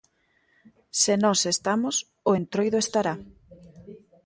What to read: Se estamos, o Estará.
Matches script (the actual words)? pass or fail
fail